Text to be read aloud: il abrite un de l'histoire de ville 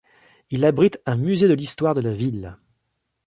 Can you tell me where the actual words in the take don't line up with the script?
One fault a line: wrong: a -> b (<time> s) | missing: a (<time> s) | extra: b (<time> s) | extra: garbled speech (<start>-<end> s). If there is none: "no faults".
extra: musée (1.1 s)
extra: la (2.0 s)